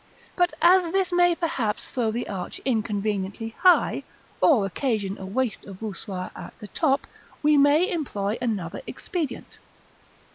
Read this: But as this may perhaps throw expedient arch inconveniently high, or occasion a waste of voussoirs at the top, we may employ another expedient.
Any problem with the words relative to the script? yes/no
yes